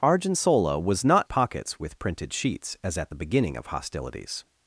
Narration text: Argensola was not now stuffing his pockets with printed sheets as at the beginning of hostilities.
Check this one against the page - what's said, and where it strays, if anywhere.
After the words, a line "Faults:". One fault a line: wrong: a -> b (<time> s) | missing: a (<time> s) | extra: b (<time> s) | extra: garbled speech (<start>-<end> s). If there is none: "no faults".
Argensola was not pockets with printed sheets as at the beginning of hostilities.
Faults:
missing: now stuffing his (1.3 s)